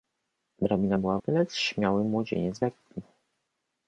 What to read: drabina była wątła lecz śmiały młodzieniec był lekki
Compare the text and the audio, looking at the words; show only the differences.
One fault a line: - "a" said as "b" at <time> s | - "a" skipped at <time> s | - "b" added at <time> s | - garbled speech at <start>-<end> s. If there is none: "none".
- "wątła" skipped at 1.2 s
- "był" skipped at 2.6 s